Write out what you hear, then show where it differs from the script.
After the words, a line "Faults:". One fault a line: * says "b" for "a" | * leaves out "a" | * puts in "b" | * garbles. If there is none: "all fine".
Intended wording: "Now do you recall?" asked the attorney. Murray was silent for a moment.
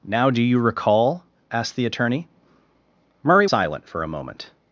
"Now do you recall?" asked the attorney. Murray silent for a moment.
Faults:
* leaves out "was"